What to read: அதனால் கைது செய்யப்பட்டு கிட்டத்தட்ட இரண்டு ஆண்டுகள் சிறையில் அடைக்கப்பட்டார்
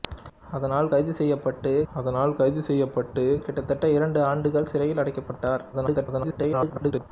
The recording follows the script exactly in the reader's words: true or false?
false